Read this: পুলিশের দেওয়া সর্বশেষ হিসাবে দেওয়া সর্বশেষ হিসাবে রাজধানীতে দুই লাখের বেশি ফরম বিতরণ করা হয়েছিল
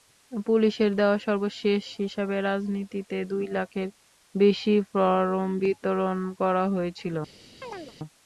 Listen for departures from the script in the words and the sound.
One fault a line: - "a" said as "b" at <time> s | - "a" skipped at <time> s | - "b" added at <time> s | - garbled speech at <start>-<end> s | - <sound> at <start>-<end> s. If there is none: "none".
- "দেওয়া সর্বশেষ হিসাবে" skipped at 2.4 s
- chirp at 7.6-8.0 s